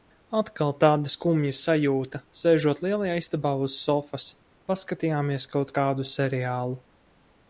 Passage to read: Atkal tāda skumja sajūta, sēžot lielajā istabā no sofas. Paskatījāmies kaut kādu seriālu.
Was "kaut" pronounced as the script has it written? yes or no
yes